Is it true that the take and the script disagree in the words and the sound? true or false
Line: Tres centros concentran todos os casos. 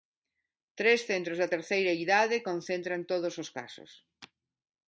true